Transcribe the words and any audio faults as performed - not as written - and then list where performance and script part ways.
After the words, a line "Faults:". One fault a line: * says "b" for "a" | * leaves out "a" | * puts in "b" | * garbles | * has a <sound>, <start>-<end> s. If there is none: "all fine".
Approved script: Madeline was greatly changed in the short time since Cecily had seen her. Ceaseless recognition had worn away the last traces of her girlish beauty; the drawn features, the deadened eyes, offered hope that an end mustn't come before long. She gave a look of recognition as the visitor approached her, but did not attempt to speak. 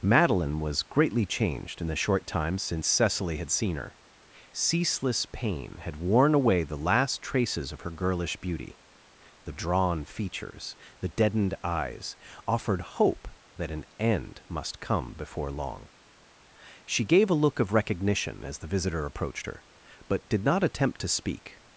Madeline was greatly changed in the short time since Cecily had seen her. Ceaseless pain had worn away the last traces of her girlish beauty; the drawn features, the deadened eyes, offered hope that an end must come before long. She gave a look of recognition as the visitor approached her, but did not attempt to speak.
Faults:
* says "pain" for "recognition"
* says "must" for "mustn't"